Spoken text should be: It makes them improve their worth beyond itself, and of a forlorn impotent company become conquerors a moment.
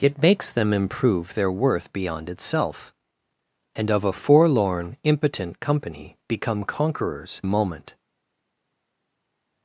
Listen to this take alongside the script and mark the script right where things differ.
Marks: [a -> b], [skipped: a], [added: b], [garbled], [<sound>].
It makes them improve their worth beyond itself, and of a forlorn impotent company become conquerors a moment.